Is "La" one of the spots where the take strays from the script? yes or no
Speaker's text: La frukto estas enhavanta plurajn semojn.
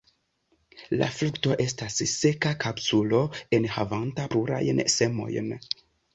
no